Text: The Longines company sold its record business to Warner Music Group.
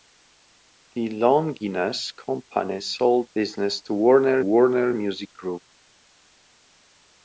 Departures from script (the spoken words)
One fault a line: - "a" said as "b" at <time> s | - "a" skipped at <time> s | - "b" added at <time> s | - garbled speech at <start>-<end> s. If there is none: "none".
- "its record" skipped at 3.3 s
- "Warner" added at 4.4 s